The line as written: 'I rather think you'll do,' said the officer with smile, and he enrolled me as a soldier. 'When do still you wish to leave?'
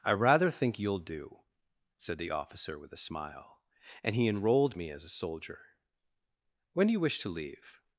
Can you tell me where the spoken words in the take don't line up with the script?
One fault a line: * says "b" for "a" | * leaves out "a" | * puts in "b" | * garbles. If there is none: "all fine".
* puts in "a"
* leaves out "still"